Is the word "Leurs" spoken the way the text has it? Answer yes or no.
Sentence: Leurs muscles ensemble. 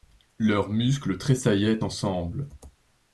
yes